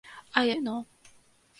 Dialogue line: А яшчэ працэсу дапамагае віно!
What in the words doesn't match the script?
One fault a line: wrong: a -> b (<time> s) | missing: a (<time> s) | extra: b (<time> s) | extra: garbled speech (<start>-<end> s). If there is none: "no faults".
missing: яшчэ працэсу дапамагае (0.4 s)